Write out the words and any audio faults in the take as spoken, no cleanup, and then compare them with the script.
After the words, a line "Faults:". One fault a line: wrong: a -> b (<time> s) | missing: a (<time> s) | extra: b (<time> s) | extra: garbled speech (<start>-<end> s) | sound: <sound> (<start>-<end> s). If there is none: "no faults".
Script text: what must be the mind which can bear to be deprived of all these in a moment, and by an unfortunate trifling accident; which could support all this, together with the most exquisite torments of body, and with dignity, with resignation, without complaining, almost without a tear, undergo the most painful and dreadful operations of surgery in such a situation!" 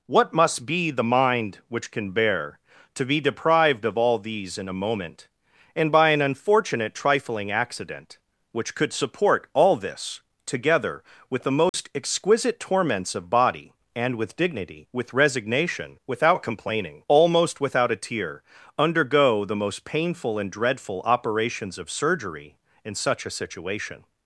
what must be the mind which can bear to be deprived of all these in a moment, and by an unfortunate trifling accident; which could support all this, together with the most exquisite torments of body, and with dignity, with resignation, without complaining, almost without a tear, undergo the most painful and dreadful operations of surgery in such a situation!"
Faults:
sound: dropout (11.7-11.7 s)